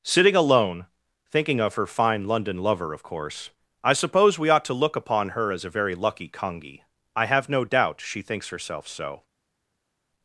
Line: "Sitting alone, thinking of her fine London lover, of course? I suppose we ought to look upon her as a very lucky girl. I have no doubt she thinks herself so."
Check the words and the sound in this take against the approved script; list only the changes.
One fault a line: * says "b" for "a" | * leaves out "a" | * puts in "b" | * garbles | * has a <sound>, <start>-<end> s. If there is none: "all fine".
* says "congi" for "girl"